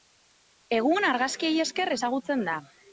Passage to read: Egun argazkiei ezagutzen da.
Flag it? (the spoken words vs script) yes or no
yes